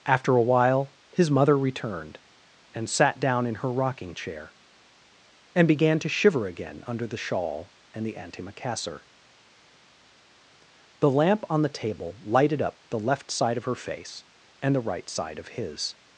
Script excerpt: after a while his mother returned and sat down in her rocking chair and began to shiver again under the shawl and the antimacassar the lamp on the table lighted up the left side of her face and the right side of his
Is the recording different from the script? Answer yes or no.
no